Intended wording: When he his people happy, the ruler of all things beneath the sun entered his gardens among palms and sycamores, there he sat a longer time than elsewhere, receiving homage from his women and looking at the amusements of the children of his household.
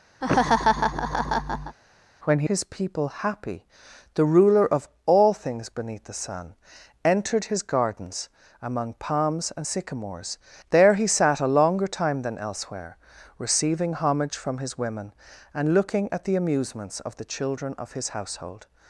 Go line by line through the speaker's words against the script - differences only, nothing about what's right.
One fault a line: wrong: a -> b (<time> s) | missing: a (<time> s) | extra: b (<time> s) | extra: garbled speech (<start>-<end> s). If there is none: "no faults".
no faults